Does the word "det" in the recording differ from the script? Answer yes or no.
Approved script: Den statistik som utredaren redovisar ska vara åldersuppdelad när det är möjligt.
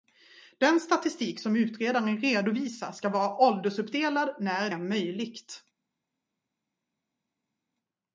yes